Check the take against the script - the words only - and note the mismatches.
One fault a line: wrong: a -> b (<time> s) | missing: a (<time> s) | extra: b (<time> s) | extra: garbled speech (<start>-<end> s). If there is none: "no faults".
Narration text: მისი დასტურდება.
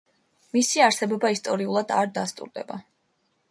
extra: არსებობა ისტორიულად არ (0.8 s)